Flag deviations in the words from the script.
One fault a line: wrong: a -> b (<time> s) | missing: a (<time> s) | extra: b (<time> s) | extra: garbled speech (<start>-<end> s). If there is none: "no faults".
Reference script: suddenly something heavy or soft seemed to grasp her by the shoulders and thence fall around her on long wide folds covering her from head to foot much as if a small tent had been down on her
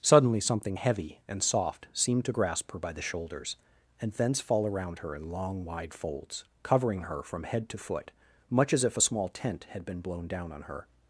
wrong: or -> and (1.3 s)
wrong: on -> in (5.1 s)
extra: blown (10.0 s)